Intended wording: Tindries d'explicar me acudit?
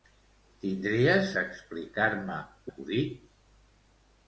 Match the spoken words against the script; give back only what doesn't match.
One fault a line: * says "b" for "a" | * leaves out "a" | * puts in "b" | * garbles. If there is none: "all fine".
all fine